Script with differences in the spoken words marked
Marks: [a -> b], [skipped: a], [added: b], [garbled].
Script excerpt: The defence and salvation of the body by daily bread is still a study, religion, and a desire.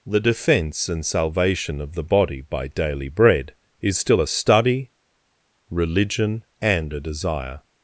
The defence and salvation of the body by daily bread is still a study, religion, and a desire.